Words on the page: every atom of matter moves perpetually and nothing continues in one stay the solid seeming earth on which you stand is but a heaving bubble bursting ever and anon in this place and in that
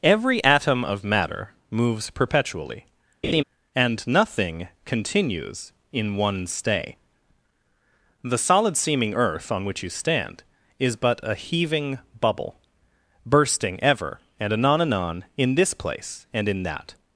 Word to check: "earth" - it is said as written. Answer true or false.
true